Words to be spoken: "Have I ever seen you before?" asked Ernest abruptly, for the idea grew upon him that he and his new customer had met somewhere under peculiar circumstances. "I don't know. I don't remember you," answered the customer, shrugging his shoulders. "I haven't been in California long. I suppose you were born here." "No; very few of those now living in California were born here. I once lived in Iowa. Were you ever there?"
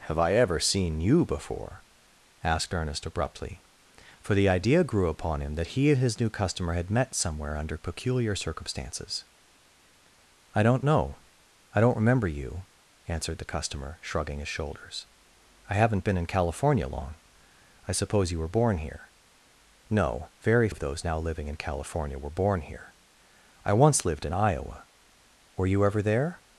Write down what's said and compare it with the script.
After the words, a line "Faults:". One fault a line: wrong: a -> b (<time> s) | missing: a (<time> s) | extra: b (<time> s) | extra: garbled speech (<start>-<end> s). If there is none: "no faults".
"Have I ever seen you before?" asked Ernest abruptly, for the idea grew upon him that he and his new customer had met somewhere under peculiar circumstances. "I don't know. I don't remember you," answered the customer, shrugging his shoulders. "I haven't been in California long. I suppose you were born here." "No; very of those now living in California were born here. I once lived in Iowa. Were you ever there?"
Faults:
missing: few (20.7 s)